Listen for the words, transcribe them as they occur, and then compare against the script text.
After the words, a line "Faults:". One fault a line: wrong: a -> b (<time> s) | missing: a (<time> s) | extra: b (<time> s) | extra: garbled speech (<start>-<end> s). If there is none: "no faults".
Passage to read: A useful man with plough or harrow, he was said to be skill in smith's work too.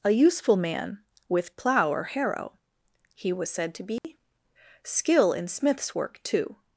A useful man with plough or harrow, he was said to be skill in smith's work too.
Faults:
no faults